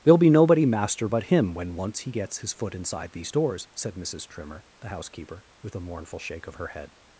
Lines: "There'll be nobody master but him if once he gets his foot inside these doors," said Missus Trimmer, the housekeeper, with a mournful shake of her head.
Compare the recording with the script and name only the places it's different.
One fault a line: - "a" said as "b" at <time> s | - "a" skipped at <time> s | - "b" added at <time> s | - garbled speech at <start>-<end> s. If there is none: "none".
- "if" said as "when" at 1.5 s